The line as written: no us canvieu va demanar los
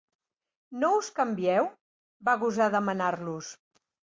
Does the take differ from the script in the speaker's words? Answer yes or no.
yes